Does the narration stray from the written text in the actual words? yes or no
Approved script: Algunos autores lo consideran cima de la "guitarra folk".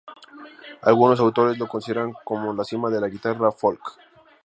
yes